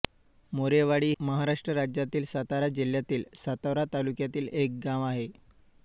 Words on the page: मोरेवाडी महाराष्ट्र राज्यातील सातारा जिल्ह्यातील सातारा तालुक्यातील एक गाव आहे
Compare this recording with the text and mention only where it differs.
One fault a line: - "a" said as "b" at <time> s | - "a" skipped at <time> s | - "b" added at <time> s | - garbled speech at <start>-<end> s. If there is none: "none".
none